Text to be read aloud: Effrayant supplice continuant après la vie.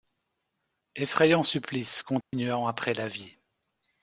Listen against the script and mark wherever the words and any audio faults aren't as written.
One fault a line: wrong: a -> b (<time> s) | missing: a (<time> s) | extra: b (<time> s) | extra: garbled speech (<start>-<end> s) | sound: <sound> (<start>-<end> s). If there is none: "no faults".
sound: dropout (2.2-2.3 s)